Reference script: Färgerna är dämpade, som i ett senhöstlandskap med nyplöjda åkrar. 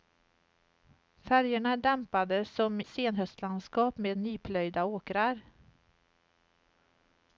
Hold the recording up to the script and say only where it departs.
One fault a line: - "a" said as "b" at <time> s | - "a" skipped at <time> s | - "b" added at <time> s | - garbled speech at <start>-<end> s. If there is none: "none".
- "i ett" skipped at 2.8 s